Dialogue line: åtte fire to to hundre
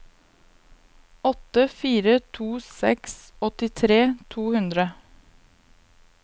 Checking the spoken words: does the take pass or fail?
fail